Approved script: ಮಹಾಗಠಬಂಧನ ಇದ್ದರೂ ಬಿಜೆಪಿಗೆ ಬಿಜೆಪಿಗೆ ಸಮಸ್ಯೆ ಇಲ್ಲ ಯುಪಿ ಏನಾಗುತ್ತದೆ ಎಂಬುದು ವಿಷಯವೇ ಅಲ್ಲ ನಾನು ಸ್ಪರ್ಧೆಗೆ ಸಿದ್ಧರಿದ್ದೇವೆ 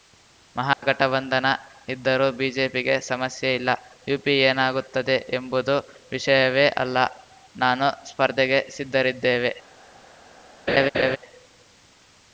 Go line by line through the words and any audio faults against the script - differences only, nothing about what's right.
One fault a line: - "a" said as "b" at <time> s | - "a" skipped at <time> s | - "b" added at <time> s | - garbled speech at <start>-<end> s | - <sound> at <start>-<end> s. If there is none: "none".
- dropout at 0.7-0.8 s
- "ಬಿಜೆಪಿಗೆ" skipped at 3.0 s
- laugh at 10.7-11.2 s